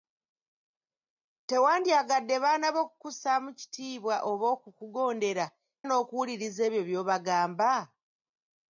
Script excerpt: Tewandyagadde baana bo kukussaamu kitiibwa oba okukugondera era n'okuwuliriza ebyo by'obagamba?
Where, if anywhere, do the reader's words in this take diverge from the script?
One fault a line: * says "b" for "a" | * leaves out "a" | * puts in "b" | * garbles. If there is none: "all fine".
* leaves out "era"